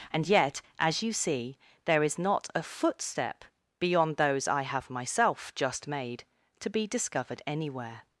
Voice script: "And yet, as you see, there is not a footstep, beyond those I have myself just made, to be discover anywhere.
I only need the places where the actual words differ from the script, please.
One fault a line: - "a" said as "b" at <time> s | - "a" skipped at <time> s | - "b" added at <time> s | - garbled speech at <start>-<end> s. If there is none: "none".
- "discover" said as "discovered" at 6.9 s